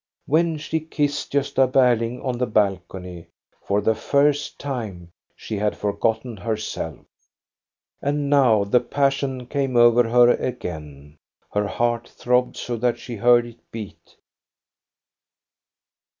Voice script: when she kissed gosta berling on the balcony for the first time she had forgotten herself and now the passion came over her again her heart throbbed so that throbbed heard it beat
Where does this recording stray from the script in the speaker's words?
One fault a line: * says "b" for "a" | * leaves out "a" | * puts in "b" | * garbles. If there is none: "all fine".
* says "she" for "throbbed"